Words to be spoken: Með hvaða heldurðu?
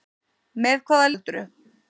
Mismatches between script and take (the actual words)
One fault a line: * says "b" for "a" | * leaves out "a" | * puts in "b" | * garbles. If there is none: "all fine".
all fine